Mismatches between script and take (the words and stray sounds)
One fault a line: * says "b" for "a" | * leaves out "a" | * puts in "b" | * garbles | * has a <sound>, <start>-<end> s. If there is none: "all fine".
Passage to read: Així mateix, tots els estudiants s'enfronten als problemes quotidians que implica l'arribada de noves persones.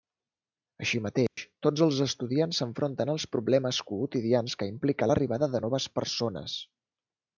* has a dropout, 1.3-1.4 s